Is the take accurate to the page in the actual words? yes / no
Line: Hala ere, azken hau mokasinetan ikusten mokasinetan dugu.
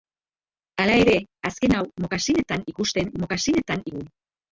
yes